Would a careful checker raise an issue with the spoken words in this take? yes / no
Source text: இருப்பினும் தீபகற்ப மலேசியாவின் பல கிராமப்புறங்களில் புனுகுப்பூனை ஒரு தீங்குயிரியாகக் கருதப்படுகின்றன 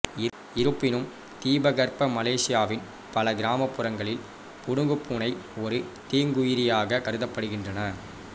no